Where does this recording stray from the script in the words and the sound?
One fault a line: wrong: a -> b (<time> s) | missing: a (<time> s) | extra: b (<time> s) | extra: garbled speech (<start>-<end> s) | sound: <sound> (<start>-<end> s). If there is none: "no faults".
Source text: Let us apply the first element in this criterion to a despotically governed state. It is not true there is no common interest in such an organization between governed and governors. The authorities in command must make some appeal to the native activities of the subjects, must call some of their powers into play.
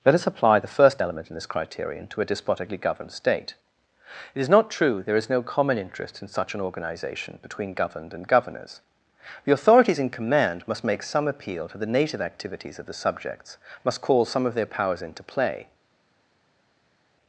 no faults